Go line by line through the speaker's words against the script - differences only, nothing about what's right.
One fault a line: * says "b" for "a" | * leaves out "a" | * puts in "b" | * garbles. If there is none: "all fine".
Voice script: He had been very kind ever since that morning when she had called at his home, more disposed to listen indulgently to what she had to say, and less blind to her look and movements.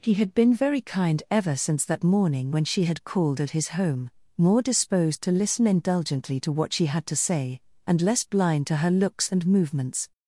* says "looks" for "look"